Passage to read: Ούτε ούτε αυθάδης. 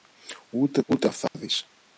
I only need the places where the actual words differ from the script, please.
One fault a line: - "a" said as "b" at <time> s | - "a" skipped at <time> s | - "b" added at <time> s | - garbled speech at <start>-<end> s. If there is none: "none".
none